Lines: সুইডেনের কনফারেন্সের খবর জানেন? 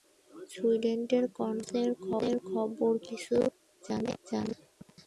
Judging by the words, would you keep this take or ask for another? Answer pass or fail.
fail